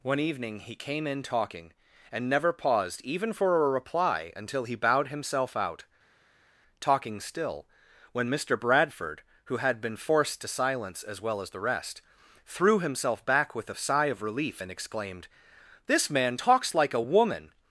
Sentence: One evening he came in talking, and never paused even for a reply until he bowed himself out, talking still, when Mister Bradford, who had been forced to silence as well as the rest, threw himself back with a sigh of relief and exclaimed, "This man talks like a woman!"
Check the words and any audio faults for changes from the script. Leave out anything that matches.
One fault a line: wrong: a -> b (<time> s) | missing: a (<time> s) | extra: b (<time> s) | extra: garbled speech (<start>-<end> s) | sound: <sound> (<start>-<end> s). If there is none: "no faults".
no faults